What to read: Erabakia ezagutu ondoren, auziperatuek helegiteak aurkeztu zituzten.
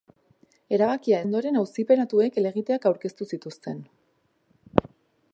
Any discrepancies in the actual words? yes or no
yes